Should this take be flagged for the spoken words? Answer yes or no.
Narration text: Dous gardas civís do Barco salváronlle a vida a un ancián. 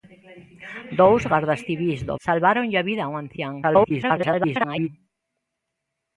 yes